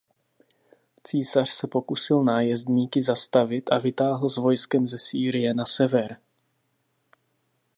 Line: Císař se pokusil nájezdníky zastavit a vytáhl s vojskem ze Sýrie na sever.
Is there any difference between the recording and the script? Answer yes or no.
no